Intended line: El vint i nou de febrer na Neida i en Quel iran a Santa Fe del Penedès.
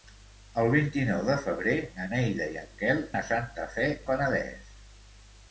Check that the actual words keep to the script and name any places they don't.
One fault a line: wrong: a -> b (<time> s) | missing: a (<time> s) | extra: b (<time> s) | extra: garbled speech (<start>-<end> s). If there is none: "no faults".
missing: iran (3.0 s)
missing: del (3.9 s)